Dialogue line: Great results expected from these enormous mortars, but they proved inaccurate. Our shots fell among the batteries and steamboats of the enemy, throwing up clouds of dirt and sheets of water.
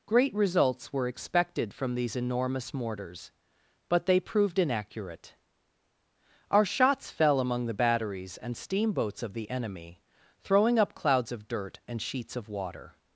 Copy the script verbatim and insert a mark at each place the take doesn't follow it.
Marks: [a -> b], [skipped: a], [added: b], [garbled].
Great results [added: were] expected from these enormous mortars, but they proved inaccurate. Our shots fell among the batteries and steamboats of the enemy, throwing up clouds of dirt and sheets of water.